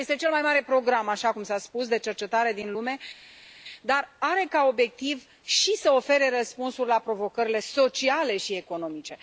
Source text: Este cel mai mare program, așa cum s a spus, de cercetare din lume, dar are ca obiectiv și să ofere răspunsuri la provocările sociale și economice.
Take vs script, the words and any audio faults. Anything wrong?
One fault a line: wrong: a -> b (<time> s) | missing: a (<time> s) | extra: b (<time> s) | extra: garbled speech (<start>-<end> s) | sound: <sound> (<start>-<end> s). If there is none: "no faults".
no faults